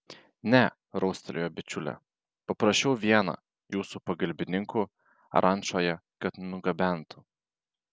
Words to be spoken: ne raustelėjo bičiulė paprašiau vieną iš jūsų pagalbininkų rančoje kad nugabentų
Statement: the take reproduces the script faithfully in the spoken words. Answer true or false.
false